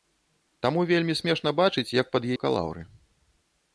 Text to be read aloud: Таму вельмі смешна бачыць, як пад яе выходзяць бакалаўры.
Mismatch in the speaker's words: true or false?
true